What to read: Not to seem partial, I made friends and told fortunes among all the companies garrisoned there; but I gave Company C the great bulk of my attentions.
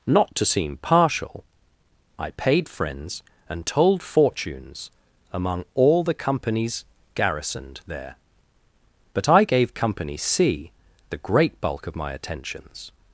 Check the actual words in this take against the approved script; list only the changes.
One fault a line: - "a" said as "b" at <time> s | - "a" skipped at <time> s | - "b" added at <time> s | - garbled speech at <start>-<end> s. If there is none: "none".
- "made" said as "paid" at 2.3 s